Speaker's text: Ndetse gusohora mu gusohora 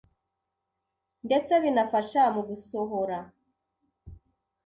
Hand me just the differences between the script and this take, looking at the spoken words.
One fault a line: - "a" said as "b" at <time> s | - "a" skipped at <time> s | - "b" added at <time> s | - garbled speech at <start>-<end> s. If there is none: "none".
- "gusohora" said as "binafasha" at 1.6 s